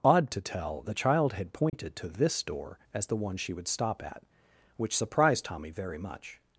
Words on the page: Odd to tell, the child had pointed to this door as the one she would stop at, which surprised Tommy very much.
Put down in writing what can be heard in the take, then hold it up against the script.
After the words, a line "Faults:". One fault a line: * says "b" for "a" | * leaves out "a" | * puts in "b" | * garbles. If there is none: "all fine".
Odd to tell, the child had pointed to this door as the one she would stop at, which surprised Tommy very much.
Faults:
all fine